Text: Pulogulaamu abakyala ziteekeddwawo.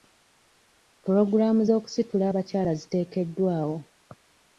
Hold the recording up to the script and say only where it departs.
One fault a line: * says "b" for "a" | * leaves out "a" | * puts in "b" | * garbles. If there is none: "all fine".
* puts in "z'okusitula"